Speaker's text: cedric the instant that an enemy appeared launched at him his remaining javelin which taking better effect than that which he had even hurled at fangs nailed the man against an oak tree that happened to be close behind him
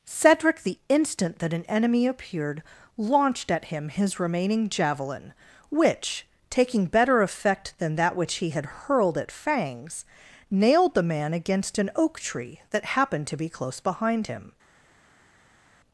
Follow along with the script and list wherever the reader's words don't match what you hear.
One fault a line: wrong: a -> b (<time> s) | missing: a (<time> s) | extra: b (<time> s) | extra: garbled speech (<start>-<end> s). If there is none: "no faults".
missing: even (8.7 s)